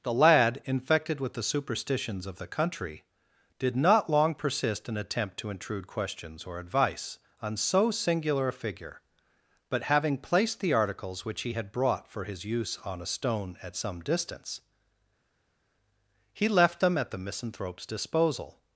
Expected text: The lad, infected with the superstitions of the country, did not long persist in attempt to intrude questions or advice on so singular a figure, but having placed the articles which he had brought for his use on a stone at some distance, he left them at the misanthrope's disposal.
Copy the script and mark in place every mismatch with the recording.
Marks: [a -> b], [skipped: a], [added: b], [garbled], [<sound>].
The lad, infected with the superstitions of the country, did not long persist in attempt to intrude questions or advice on so singular a figure, but having placed the articles which he had brought for his use on a stone at some distance, he left them at the misanthrope's disposal.